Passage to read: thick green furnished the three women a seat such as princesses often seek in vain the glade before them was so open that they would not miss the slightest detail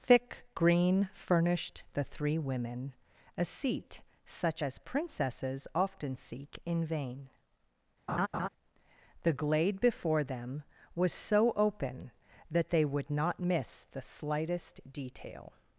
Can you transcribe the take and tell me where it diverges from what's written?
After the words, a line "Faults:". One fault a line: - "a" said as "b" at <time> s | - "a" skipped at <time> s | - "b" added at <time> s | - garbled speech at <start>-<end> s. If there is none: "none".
thick green furnished the three women a seat such as princesses often seek in vain the glade before them was so open that they would not miss the slightest detail
Faults:
none